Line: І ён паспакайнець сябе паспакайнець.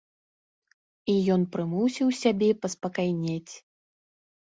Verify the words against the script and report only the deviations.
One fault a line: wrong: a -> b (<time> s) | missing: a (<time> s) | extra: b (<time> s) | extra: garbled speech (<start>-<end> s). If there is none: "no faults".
wrong: паспакайнець -> прымусіў (1.6 s)